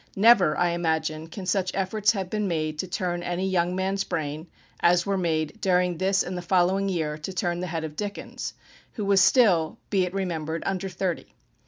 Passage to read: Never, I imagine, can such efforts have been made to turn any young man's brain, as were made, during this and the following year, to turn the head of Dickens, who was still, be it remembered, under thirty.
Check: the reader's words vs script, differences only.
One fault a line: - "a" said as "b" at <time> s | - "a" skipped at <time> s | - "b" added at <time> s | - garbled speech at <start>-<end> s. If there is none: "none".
none